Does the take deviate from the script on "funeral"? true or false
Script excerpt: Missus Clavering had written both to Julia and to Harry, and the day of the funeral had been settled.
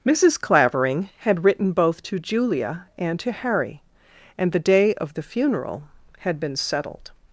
false